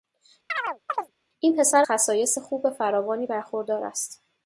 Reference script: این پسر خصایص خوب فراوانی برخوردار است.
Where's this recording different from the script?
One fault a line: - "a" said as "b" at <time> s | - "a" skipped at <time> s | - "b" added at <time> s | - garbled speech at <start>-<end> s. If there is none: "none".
none